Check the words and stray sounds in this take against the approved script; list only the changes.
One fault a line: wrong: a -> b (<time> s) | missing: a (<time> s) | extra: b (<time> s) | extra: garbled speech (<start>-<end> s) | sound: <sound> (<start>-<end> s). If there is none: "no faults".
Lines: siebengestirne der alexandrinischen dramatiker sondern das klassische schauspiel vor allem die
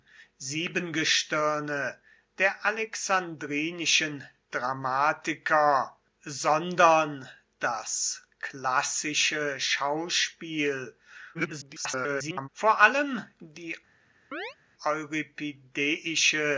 extra: garbled speech (11.3-12.5 s)
sound: chirp (14.3-14.6 s)